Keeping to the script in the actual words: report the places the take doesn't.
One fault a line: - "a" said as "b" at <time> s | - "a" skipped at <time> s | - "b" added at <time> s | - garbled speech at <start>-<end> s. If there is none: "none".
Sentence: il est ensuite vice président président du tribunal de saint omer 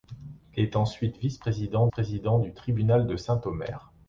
none